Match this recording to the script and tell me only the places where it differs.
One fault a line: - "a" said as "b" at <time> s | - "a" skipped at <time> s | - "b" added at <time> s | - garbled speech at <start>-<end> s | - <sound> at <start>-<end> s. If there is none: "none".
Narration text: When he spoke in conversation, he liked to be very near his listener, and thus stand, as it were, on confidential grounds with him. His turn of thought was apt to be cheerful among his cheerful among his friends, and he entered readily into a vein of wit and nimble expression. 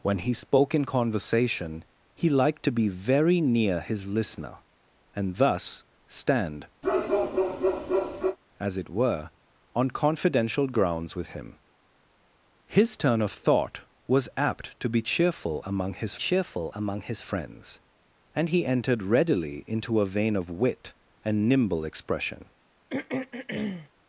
- bark at 6.8-8.4 s
- throat clearing at 22.9-23.9 s